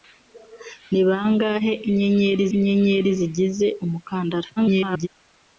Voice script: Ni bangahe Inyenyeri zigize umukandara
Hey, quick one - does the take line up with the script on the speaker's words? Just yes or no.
no